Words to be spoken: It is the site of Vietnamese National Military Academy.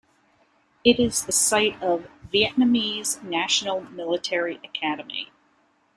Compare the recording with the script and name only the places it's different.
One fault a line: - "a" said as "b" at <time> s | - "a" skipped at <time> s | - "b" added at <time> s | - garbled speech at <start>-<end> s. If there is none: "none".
none